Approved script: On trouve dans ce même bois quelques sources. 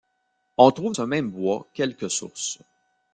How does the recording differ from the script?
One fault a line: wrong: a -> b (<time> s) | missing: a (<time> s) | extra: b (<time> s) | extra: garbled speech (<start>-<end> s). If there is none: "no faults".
missing: dans (0.9 s)